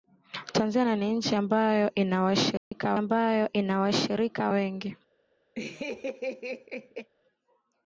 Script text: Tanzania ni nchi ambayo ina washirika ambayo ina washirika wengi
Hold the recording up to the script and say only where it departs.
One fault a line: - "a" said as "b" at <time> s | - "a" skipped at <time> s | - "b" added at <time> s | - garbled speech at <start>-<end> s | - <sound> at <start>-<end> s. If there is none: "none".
- dropout at 2.6-2.7 s
- laugh at 5.6-7.1 s